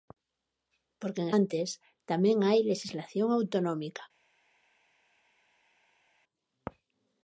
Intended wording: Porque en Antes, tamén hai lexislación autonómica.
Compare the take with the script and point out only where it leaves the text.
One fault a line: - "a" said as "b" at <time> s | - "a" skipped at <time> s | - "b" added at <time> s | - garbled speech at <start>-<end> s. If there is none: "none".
none